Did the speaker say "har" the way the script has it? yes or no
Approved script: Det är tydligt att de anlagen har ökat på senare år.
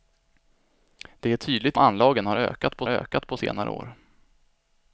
no